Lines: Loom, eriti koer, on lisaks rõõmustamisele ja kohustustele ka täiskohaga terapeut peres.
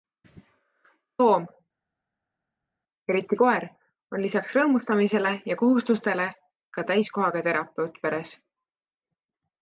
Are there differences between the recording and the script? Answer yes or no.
no